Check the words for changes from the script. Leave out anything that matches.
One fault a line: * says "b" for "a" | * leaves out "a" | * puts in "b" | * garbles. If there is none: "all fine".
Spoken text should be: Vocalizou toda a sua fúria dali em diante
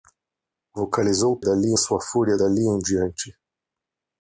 * says "dali" for "toda"